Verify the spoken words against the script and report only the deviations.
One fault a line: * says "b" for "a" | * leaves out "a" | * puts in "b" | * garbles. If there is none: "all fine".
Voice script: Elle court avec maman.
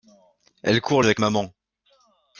all fine